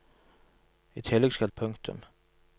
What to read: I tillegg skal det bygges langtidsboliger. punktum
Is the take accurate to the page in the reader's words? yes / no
no